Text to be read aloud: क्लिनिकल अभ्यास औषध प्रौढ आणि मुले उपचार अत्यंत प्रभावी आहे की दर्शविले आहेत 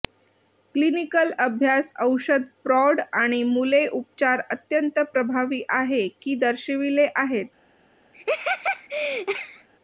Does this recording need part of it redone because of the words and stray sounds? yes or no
yes